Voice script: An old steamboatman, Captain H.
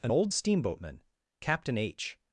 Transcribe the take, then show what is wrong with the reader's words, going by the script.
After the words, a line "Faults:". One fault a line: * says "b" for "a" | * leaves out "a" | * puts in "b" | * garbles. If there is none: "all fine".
An old steamboatman, Captain H.
Faults:
all fine